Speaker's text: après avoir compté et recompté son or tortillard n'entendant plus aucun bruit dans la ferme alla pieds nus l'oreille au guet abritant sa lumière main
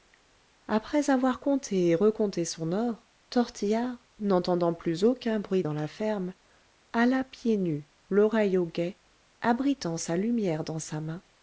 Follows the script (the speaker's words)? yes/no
no